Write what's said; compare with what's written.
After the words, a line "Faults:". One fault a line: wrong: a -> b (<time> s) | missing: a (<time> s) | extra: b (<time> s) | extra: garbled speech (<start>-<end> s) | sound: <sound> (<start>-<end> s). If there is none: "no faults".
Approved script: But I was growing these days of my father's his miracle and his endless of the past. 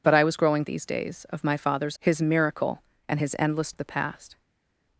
But I was growing these days of my father's his miracle and his endless of the past.
Faults:
no faults